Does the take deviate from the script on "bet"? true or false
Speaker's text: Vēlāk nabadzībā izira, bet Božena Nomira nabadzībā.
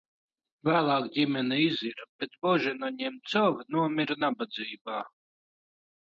false